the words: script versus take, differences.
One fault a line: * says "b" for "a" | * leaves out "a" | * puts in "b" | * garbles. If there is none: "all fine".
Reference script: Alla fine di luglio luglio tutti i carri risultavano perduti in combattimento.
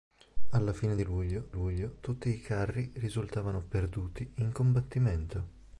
all fine